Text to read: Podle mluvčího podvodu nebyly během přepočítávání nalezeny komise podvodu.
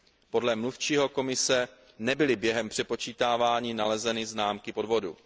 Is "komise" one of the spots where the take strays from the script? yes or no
yes